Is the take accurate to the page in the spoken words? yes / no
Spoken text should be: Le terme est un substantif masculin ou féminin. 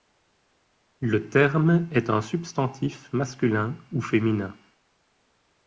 yes